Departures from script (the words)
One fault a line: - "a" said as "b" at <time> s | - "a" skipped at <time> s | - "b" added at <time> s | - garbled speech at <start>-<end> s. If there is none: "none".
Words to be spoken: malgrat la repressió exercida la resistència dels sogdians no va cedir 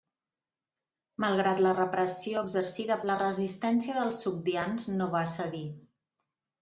none